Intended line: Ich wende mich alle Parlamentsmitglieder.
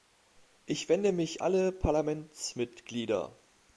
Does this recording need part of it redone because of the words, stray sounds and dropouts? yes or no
no